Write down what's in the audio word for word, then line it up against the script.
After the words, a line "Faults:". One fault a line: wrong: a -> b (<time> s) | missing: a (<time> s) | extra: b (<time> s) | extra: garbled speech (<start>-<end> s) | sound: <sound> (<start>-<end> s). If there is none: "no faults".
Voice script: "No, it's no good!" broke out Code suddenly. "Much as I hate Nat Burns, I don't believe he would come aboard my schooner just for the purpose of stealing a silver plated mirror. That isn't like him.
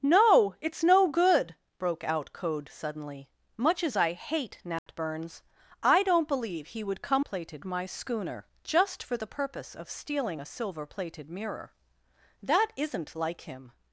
"No, it's no good!" broke out Code suddenly. "Much as I hate Nat Burns, I don't believe he would come plated my schooner just for the purpose of stealing a silver plated mirror. That isn't like him.
Faults:
sound: dropout (4.8-4.9 s)
wrong: aboard -> plated (7.2 s)